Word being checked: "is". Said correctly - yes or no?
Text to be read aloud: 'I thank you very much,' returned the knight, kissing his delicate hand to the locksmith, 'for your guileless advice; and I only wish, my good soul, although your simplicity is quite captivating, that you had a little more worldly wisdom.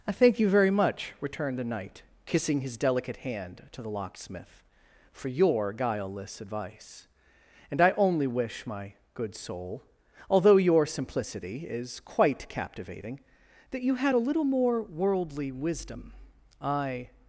yes